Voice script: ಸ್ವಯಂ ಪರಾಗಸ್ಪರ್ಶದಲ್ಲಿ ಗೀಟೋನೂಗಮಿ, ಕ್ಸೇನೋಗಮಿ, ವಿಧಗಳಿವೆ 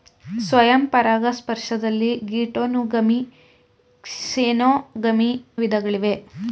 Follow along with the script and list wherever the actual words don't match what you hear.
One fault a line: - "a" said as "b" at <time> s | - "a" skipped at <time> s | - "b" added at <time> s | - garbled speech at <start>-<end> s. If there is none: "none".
none